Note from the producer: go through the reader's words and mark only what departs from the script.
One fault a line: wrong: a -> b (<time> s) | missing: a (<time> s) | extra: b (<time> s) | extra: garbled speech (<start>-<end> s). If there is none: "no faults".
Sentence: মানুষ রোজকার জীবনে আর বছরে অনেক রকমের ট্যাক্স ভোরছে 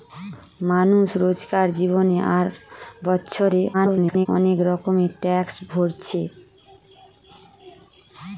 extra: garbled speech (3.7-4.3 s)